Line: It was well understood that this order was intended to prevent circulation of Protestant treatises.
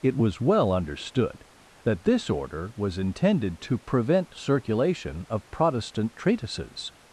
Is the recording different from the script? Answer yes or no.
no